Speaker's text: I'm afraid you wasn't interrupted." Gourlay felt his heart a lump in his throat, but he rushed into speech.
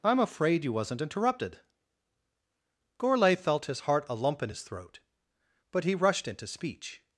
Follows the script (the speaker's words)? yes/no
yes